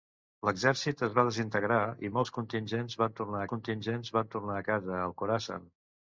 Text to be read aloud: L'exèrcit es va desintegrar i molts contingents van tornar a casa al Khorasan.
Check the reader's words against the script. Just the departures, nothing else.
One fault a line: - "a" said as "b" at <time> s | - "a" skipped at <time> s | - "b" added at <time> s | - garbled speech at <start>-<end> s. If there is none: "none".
- "contingents van tornar" added at 3.5 s